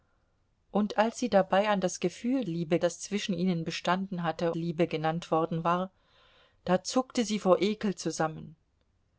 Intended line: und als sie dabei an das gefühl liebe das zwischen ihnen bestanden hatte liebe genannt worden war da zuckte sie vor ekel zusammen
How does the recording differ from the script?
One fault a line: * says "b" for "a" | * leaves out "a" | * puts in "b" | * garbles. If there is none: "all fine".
all fine